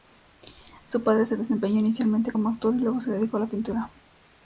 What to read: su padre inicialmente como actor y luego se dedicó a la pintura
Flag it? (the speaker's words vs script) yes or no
yes